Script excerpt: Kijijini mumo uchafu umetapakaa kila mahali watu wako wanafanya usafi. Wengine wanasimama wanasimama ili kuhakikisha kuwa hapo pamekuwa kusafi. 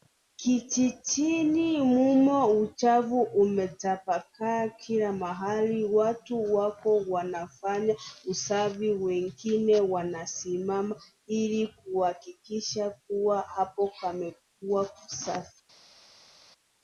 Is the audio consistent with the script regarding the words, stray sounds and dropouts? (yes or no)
no